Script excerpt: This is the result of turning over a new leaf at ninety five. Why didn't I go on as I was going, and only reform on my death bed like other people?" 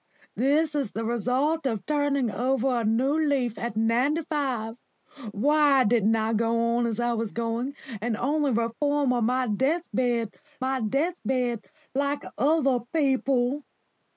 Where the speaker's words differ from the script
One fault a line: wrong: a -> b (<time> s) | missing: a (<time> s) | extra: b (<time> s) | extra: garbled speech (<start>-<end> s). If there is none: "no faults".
extra: my death bed (10.6 s)